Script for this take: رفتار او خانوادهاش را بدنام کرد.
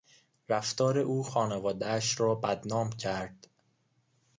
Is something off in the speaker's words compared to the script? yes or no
no